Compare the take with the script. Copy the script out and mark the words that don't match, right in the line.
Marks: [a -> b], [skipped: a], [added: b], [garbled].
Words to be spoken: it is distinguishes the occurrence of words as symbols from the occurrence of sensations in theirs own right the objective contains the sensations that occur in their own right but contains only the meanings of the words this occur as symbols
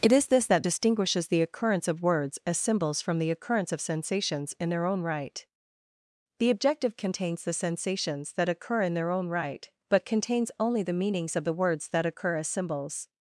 it is [added: this that] distinguishes the occurrence of words as symbols from the occurrence of sensations in [theirs -> their] own right the objective contains the sensations that occur in their own right but contains only the meanings of the words [this -> that] occur as symbols